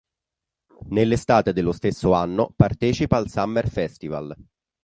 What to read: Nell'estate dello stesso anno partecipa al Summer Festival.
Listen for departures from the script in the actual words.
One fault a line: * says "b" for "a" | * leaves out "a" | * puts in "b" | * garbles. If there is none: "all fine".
all fine